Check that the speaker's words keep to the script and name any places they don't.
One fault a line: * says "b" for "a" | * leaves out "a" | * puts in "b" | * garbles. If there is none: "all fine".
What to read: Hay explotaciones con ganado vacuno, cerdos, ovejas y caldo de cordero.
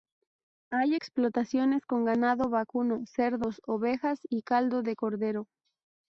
all fine